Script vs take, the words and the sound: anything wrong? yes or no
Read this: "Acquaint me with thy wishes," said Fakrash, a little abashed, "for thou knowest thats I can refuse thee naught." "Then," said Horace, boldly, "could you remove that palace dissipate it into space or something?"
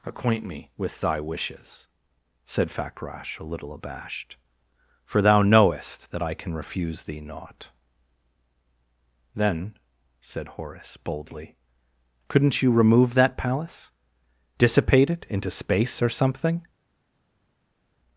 yes